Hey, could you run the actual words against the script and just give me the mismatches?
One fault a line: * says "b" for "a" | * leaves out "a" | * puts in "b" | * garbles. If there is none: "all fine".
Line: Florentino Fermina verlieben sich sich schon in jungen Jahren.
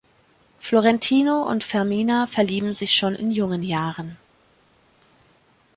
* puts in "und"
* leaves out "sich"